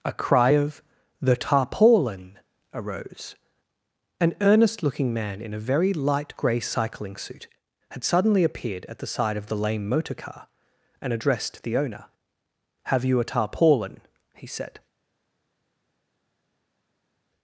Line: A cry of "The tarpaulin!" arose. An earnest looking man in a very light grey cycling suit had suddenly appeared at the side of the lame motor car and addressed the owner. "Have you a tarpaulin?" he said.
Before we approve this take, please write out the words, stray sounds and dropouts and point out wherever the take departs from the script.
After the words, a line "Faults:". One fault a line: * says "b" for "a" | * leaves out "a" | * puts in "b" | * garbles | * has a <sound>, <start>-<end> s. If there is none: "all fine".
A cry of "The tarpaulin!" arose. An earnest looking man in a very light grey cycling suit had suddenly appeared at the side of the lame motor car and addressed the owner. "Have you a tarpaulin?" he said.
Faults:
all fine